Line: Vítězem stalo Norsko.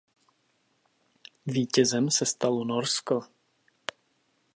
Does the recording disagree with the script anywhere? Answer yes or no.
yes